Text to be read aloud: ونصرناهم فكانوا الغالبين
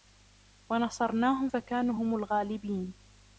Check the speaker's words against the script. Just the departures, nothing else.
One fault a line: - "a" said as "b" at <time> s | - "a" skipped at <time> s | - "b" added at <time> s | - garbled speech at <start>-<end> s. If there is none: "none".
- "هم" added at 1.9 s